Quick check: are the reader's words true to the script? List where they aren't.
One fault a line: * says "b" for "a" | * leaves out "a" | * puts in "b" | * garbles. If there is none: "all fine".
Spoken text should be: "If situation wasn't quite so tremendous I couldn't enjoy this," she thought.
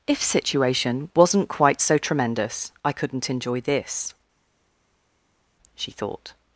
all fine